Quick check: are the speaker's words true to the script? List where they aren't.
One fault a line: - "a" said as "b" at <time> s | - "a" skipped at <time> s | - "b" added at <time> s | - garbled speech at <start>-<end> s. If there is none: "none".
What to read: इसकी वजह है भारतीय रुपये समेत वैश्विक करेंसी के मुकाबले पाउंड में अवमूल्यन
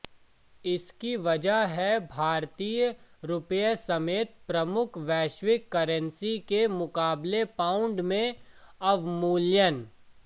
- "प्रमुख" added at 4.5 s